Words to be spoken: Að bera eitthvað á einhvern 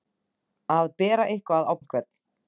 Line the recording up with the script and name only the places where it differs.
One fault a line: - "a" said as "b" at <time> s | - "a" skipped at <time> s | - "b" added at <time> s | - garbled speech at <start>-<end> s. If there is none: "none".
none